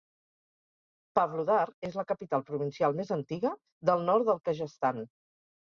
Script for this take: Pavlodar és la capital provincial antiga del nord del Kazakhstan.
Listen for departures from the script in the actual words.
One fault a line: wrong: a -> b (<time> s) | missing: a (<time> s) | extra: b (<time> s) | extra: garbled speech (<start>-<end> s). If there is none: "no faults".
extra: més (3.0 s)